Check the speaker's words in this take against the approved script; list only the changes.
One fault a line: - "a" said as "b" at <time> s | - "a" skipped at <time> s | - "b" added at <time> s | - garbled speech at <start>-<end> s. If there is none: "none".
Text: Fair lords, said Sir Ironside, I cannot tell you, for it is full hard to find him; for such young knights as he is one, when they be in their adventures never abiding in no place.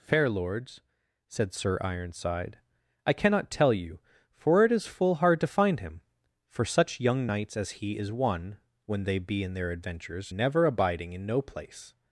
none